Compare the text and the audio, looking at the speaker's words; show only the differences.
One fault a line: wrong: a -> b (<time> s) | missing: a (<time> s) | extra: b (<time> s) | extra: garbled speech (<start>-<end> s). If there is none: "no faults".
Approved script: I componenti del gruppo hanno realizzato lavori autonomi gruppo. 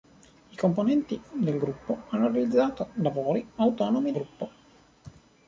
no faults